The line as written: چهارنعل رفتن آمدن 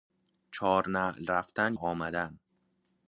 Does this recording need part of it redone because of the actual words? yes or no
no